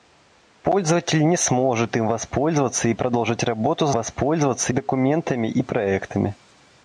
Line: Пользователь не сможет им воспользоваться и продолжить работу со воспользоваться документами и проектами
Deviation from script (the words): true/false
false